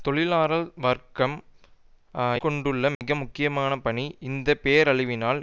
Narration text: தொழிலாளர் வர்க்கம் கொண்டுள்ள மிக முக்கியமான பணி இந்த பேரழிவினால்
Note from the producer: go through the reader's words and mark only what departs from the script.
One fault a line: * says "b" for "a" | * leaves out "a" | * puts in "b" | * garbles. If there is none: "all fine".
all fine